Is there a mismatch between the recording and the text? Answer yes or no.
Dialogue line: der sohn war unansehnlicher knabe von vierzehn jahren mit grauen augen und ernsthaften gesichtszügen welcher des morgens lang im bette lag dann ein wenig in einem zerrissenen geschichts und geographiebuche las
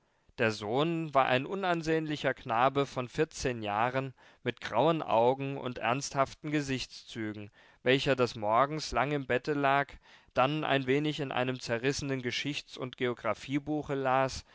yes